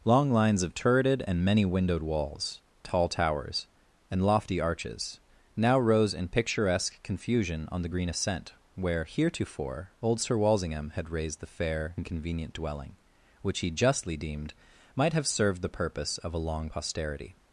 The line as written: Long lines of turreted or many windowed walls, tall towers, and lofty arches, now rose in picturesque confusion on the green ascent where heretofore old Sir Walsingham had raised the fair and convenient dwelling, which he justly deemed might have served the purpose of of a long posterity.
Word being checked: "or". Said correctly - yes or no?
no